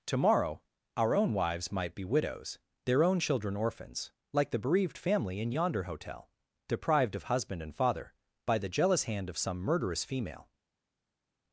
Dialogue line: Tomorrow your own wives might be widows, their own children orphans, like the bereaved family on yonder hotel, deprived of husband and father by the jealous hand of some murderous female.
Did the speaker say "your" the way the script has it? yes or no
no